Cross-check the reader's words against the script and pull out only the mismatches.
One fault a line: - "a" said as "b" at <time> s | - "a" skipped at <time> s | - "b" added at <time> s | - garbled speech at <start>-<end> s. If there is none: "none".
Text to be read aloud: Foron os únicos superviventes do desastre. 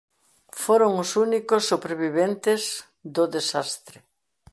none